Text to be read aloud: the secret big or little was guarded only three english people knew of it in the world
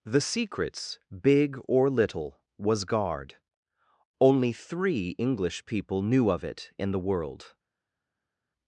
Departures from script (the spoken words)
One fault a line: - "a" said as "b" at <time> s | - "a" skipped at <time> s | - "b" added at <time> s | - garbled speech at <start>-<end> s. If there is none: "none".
- "secret" said as "secrets" at 0.2 s
- "guarded" said as "guard" at 2.9 s